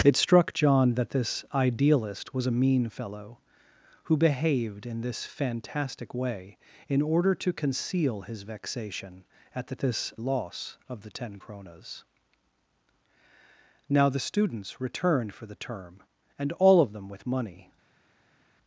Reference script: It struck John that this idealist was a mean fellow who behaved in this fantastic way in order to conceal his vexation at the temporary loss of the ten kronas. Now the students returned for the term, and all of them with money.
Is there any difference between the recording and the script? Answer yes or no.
yes